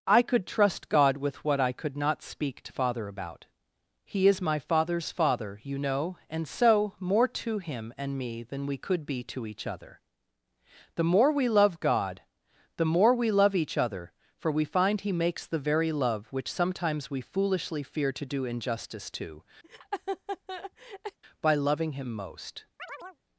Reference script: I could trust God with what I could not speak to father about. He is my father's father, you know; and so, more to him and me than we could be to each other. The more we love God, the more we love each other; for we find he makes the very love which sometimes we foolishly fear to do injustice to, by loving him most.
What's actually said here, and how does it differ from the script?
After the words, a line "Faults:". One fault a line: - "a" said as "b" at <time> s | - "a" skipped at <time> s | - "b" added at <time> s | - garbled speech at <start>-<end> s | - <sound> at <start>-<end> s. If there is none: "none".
I could trust God with what I could not speak to father about. He is my father's father, you know; and so, more to him and me than we could be to each other. The more we love God, the more we love each other; for we find he makes the very love which sometimes we foolishly fear to do injustice to, by loving him most.
Faults:
- laugh at 19.6-21.2 s
- chirp at 22.8-23.2 s